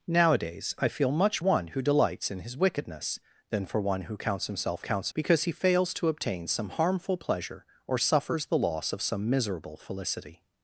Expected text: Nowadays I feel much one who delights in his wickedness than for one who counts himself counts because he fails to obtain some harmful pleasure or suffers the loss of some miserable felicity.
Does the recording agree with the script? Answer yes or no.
yes